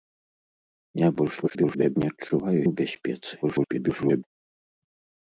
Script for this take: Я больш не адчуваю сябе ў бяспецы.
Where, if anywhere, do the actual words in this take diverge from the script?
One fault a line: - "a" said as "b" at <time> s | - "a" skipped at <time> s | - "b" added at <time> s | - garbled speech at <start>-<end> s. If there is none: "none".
- garbled speech at 1.4-2.0 s
- "сябе" skipped at 2.6 s
- garbled speech at 3.4-4.2 s